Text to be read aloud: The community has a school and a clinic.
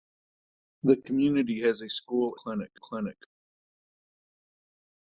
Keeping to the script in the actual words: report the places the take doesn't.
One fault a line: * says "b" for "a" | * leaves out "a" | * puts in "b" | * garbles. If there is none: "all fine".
* says "clinic" for "and"